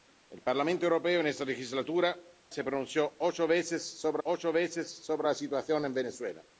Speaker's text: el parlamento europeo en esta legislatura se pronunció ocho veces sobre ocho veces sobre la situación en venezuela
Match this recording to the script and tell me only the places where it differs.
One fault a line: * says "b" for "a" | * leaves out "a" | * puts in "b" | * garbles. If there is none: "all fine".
all fine